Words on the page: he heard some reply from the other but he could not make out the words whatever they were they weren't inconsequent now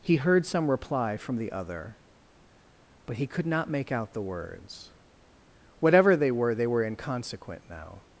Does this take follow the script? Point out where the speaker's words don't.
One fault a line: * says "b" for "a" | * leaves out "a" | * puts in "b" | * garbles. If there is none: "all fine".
* says "were" for "weren't"